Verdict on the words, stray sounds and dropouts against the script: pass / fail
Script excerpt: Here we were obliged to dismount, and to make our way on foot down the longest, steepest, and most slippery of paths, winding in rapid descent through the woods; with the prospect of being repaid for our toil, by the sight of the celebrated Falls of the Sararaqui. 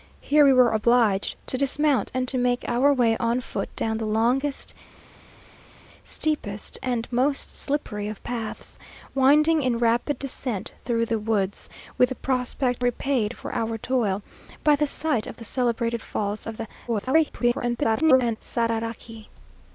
fail